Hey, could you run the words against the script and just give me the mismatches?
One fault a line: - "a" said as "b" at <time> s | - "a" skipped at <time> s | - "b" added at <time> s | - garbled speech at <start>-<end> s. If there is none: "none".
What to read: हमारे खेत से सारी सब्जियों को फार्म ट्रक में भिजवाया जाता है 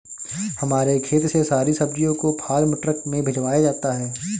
none